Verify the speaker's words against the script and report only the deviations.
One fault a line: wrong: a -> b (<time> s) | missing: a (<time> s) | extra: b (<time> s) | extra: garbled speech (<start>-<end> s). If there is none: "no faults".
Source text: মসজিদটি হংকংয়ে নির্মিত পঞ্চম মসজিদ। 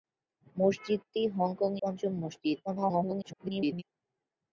missing: নির্মিত (1.8 s)
extra: garbled speech (2.6-3.8 s)